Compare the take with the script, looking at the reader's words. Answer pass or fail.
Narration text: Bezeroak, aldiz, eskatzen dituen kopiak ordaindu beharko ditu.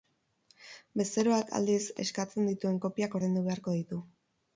pass